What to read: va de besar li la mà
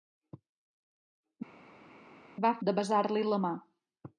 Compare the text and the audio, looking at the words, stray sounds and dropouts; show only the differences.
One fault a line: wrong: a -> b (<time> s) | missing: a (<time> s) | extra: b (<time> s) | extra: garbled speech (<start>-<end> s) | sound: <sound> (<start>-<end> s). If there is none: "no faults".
no faults